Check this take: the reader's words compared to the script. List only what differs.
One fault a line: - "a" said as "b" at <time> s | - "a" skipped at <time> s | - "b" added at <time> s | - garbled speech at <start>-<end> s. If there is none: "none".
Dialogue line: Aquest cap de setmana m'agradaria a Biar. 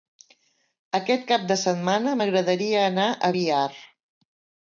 - "anar" added at 2.9 s